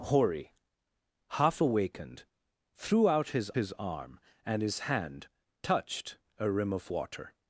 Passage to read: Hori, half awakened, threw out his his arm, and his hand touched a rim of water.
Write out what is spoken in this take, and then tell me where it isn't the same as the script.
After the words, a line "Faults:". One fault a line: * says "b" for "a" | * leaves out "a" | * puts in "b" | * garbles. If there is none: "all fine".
Hori, half awakened, threw out his his arm, and his hand touched a rim of water.
Faults:
all fine